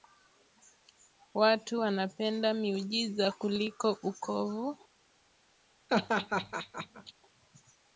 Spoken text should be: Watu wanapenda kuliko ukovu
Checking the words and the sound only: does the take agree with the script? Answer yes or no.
no